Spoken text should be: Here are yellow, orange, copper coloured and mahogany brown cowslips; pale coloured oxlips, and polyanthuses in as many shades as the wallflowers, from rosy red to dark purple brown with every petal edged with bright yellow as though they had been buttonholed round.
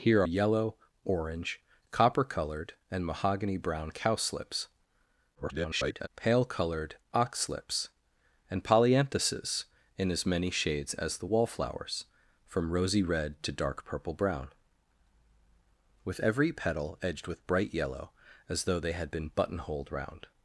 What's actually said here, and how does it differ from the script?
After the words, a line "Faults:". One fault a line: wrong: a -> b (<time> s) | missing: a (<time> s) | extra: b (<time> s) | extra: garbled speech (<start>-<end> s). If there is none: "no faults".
Here yellow, orange, copper coloured and mahogany brown cowslips; [garbled] pale coloured oxlips, and polyanthuses in as many shades as the wallflowers, from rosy red to dark purple brown with every petal edged with bright yellow as though they had been buttonholed round.
Faults:
missing: are (0.2 s)
extra: garbled speech (5.4-6.1 s)